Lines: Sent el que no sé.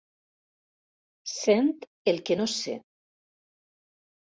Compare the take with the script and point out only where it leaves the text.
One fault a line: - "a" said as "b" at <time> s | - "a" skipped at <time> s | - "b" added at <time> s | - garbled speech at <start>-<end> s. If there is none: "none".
none